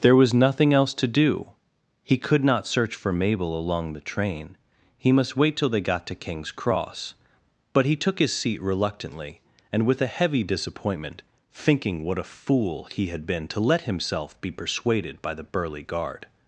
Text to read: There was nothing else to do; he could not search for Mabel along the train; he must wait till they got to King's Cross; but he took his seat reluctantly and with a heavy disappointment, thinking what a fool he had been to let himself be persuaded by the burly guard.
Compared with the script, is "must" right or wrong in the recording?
right